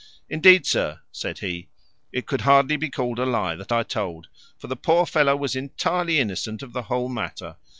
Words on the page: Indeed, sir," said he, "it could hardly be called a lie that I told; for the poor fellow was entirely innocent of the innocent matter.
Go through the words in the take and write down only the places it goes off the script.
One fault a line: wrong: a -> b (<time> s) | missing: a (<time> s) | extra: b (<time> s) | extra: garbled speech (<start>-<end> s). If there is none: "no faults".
wrong: innocent -> whole (6.8 s)